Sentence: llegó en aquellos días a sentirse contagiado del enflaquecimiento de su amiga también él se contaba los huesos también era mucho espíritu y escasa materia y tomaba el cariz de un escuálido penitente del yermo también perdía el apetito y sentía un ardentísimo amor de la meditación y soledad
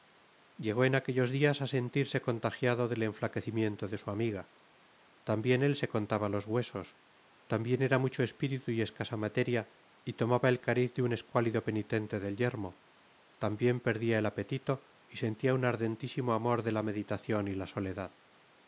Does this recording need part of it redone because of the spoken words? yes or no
yes